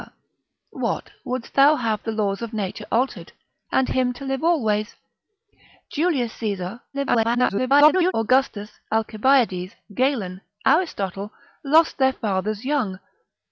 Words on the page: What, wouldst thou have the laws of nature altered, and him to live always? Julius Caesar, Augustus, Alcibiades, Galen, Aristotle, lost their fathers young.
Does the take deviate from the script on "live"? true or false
false